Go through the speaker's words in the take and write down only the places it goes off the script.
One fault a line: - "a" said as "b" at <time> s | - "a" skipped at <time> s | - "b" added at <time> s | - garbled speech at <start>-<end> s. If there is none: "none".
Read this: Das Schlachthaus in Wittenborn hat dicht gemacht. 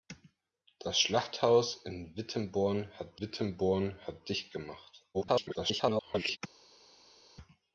- "Wittenborn hat" added at 3.2 s
- garbled speech at 5.1-6.4 s